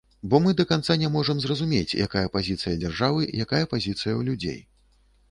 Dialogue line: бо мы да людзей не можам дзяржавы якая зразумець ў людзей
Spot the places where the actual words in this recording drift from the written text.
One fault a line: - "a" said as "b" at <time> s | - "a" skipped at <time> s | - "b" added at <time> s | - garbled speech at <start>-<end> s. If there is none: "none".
- "людзей" said as "канца" at 0.7 s
- "зразумець якая пазіцыя" added at 1.4 s
- "зразумець" said as "пазіцыя" at 3.7 s